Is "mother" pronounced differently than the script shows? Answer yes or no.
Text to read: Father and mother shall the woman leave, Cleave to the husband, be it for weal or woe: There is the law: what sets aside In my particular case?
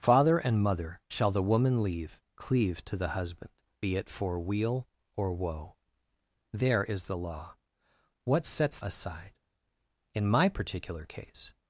no